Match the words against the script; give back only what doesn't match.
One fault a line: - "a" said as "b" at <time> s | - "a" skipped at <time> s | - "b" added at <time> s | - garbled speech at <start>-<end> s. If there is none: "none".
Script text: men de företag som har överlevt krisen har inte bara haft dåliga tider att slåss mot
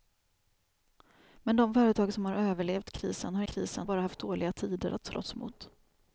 - "inte" said as "krisen" at 3.4 s